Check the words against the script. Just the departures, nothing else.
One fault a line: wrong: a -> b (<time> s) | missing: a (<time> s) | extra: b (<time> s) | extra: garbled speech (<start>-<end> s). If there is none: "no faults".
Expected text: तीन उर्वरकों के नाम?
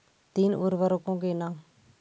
no faults